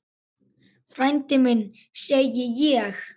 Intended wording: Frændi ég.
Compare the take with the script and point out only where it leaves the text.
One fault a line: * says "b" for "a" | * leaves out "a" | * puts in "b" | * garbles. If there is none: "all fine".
* puts in "minn segi"